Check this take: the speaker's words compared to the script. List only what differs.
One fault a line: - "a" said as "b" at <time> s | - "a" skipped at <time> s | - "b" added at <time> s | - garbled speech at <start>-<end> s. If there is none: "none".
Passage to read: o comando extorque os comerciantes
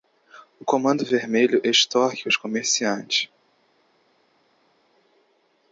- "vermelho" added at 1.1 s